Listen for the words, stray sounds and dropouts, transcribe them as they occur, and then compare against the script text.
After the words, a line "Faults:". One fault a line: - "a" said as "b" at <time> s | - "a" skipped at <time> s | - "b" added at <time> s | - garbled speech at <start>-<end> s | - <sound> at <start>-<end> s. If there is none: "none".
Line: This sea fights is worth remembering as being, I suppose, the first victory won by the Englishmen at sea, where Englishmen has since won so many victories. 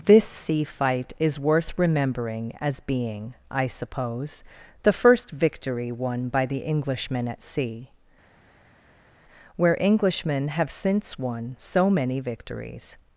This sea fight is worth remembering as being, I suppose, the first victory won by the Englishmen at sea, where Englishmen have since won so many victories.
Faults:
- "fights" said as "fight" at 0.6 s
- "has" said as "have" at 10.5 s